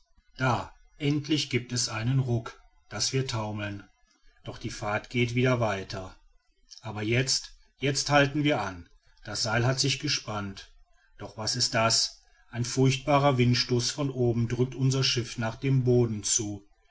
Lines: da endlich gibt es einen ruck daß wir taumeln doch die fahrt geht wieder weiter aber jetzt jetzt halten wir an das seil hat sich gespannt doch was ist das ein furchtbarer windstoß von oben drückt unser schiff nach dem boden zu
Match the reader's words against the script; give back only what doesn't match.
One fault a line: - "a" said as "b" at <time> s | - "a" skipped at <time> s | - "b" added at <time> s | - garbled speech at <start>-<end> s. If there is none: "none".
none